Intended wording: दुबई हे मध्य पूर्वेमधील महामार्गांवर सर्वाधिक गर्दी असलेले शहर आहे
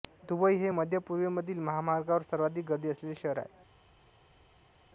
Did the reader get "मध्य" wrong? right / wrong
right